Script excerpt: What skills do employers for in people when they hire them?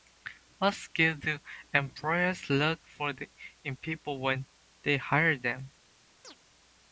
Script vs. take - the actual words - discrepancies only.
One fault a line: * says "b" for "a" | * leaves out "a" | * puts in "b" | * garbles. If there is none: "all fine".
* puts in "look"